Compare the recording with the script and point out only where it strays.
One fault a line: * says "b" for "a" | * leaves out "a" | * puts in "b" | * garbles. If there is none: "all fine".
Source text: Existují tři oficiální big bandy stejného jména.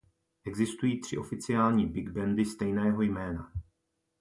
all fine